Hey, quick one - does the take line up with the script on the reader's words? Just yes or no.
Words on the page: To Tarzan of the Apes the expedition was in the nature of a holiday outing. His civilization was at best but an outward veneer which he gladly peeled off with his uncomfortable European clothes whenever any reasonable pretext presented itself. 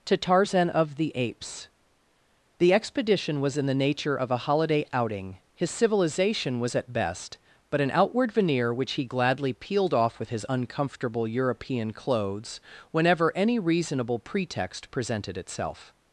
yes